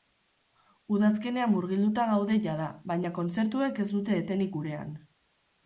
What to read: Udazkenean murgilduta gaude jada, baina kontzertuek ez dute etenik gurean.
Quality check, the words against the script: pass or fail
pass